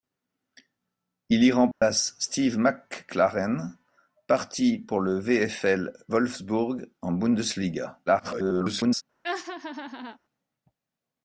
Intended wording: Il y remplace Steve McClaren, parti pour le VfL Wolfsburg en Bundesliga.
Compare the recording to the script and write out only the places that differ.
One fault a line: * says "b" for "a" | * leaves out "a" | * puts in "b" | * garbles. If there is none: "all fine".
* garbles